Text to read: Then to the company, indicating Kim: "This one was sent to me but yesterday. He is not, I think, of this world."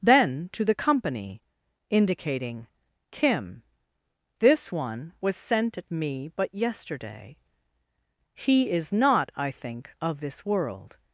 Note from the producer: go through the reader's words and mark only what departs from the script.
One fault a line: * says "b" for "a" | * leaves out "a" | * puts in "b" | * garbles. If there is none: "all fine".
* says "at" for "to"